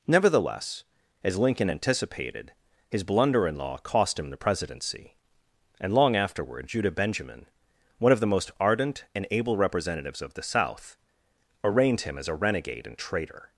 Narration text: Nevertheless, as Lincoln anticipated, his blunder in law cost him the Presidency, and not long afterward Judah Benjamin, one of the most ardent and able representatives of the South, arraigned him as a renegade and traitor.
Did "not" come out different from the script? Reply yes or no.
yes